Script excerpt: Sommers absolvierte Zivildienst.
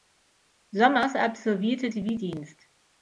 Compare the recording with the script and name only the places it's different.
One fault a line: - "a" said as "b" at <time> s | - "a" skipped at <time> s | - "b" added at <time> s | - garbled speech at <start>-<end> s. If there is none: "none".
none